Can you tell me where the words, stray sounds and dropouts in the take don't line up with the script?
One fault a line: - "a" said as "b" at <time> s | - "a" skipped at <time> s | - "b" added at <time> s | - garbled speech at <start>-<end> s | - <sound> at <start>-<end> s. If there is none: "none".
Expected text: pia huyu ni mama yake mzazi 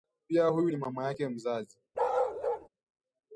- bark at 1.9-2.7 s